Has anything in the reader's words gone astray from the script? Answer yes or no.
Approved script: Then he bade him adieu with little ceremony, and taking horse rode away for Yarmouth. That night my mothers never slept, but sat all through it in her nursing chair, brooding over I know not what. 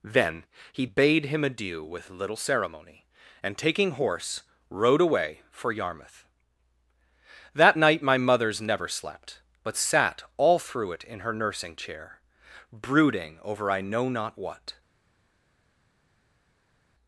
no